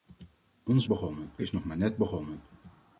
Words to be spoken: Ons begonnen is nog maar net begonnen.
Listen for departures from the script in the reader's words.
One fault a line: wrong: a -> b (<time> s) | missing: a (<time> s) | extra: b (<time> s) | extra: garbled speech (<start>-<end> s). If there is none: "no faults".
no faults